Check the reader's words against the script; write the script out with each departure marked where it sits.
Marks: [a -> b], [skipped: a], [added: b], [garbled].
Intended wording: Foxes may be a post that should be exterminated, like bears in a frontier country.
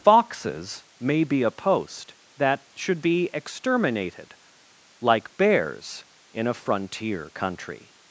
Foxes may be a post that should be exterminated, like bears in a frontier country.